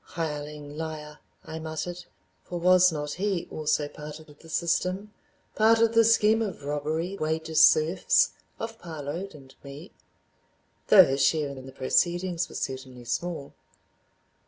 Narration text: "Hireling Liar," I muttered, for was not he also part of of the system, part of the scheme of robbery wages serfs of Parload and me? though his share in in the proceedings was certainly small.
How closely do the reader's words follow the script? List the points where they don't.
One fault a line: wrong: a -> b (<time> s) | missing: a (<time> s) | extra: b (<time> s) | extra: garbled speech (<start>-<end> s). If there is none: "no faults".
no faults